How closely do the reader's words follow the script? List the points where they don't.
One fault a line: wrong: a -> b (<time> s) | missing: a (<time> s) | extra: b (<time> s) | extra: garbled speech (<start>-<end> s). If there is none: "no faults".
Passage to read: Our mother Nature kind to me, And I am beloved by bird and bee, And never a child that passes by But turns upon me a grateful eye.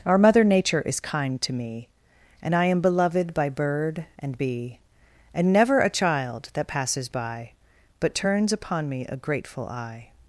extra: is (0.8 s)